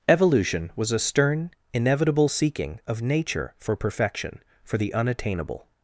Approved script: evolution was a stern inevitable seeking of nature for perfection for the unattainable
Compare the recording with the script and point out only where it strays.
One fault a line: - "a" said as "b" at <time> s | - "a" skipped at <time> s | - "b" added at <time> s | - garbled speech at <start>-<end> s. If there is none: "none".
none